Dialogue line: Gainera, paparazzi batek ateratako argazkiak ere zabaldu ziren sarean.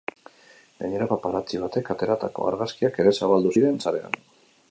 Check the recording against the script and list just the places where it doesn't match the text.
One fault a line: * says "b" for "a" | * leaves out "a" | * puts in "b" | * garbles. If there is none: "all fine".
all fine